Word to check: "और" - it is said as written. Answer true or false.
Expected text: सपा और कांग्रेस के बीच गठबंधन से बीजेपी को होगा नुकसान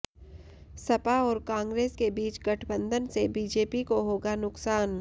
true